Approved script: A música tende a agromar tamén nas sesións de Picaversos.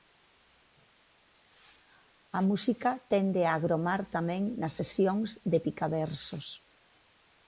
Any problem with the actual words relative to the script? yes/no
no